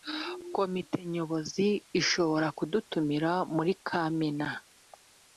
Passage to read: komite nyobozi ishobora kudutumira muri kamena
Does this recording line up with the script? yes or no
yes